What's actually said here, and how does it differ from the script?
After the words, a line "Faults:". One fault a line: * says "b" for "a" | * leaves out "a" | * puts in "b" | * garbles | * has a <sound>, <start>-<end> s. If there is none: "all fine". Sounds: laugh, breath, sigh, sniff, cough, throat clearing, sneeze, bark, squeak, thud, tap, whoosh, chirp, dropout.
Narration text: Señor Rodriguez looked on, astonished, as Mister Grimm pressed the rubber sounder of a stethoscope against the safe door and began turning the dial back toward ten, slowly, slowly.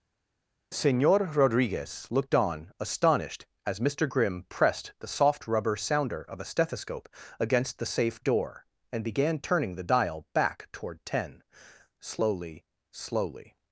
Señor Rodriguez looked on, astonished, as Mister Grimm pressed the soft rubber sounder of a stethoscope against the safe door and began turning the dial back toward ten, slowly, slowly.
Faults:
* puts in "soft"